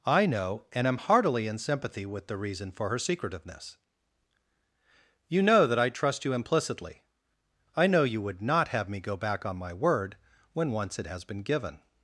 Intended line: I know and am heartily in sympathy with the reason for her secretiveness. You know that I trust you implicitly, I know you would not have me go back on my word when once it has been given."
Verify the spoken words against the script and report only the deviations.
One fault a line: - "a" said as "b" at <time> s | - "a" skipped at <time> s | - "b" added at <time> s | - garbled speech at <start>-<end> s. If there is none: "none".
none